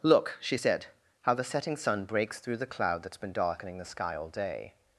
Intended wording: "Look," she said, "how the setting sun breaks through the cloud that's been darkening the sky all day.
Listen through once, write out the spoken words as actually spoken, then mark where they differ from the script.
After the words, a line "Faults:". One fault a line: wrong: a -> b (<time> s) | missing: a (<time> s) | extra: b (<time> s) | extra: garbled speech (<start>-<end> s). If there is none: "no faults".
"Look," she said, "how the setting sun breaks through the cloud that's been darkening the sky all day.
Faults:
no faults